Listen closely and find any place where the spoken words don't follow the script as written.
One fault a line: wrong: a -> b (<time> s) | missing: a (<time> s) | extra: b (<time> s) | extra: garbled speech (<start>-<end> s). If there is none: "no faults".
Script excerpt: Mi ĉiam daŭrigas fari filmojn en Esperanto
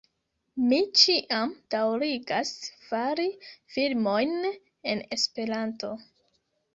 no faults